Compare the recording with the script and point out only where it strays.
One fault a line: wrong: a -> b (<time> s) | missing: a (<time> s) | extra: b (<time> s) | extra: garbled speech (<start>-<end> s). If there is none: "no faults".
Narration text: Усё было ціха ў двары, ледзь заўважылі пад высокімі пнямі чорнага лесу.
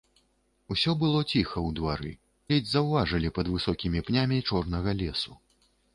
no faults